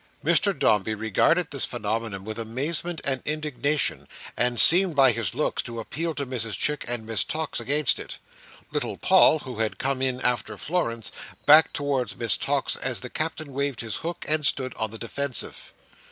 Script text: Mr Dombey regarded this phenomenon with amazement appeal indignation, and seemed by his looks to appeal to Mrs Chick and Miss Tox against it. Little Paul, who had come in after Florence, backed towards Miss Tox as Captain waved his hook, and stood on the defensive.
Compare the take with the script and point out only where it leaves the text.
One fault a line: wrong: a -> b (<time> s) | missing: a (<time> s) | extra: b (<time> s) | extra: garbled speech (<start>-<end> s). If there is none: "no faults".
wrong: appeal -> and (3.0 s)
extra: the (13.0 s)